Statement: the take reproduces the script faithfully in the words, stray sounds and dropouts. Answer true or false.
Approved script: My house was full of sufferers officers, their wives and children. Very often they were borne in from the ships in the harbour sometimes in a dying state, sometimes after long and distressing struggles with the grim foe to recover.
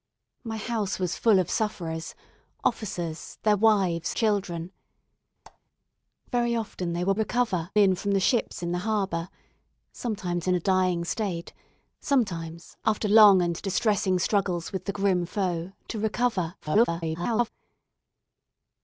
false